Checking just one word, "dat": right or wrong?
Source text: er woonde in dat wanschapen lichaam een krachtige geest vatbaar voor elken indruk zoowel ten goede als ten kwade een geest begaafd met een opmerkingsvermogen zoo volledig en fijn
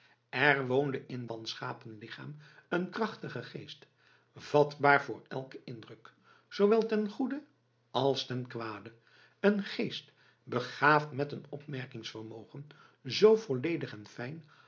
wrong